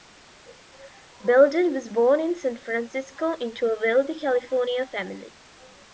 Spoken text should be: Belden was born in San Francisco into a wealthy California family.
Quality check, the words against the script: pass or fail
pass